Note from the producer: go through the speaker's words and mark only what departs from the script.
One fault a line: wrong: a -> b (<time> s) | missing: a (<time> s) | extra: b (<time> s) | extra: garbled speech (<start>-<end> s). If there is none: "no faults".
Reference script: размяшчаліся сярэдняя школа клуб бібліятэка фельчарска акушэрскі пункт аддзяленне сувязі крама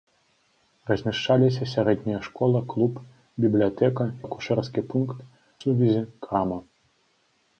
missing: фельчарска (4.1 s)
missing: аддзяленне (5.2 s)